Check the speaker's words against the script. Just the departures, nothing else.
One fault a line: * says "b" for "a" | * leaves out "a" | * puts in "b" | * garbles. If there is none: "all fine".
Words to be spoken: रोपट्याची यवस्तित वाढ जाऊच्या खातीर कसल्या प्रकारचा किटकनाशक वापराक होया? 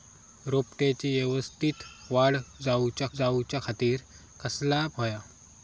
* puts in "जाऊच्या"
* leaves out "प्रकारचा किटकनाशक वापराक"